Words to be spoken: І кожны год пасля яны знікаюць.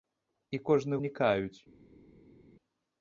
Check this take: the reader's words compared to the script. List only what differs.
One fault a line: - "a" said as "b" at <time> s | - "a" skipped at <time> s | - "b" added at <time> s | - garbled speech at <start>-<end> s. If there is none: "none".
- "год пасля яны" skipped at 1.0 s